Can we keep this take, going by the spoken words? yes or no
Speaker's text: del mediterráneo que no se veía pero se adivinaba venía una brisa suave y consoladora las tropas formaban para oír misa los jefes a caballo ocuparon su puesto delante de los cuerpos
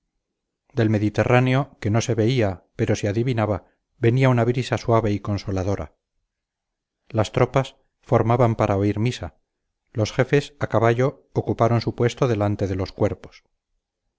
yes